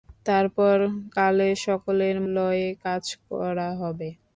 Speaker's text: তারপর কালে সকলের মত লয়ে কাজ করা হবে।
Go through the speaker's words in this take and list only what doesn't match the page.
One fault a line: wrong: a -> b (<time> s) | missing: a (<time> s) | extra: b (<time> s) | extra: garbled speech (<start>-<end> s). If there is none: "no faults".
missing: মত (2.2 s)